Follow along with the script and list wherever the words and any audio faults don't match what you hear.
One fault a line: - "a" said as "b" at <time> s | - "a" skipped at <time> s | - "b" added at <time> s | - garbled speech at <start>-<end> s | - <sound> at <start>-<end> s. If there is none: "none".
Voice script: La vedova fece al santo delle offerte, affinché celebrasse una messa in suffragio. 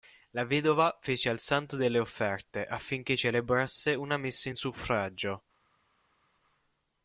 none